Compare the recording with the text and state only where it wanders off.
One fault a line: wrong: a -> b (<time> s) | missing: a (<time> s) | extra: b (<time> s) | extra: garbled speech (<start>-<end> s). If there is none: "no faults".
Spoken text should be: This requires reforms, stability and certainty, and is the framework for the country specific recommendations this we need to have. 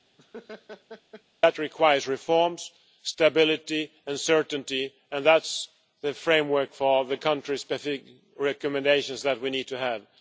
wrong: This -> That (1.4 s)
extra: that (5.3 s)
wrong: this -> that (9.2 s)